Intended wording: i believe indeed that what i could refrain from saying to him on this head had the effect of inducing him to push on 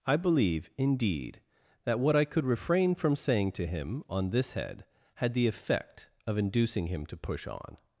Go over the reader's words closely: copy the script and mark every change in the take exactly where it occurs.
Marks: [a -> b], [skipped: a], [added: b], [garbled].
i believe indeed that what i could refrain from saying to him on this head had the effect of inducing him to push on